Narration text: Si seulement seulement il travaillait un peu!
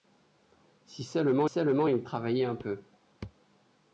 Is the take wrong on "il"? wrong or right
right